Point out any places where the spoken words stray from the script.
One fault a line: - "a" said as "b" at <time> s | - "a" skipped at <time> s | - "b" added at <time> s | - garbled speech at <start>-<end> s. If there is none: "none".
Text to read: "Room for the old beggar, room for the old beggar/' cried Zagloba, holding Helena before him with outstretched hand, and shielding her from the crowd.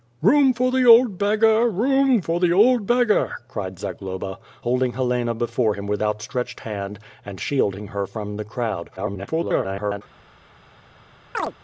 - garbled speech at 9.0-10.0 s